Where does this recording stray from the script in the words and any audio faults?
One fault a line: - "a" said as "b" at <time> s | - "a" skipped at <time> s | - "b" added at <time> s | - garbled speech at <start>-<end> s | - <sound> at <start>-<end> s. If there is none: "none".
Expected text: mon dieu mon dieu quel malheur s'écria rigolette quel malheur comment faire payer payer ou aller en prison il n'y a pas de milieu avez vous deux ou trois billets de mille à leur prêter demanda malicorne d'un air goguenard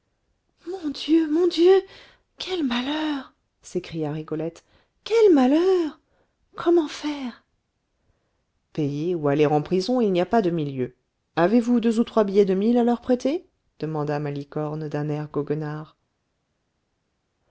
- "payer" skipped at 9.1 s